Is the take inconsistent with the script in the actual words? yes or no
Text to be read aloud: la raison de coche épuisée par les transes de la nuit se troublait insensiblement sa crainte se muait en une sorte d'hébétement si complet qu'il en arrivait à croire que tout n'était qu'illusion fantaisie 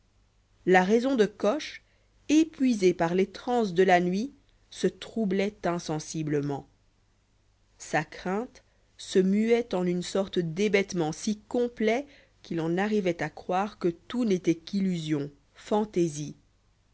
no